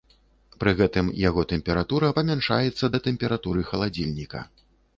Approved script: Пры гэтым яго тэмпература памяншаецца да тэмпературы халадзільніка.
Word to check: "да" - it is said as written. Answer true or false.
true